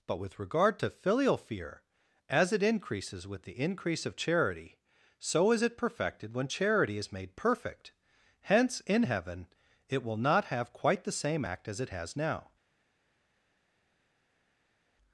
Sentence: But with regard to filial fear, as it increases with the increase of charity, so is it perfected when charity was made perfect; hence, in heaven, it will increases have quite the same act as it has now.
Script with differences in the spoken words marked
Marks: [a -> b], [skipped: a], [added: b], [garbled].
But with regard to filial fear, as it increases with the increase of charity, so is it perfected when charity [was -> is] made perfect; hence, in heaven, it will [increases -> not] have quite the same act as it has now.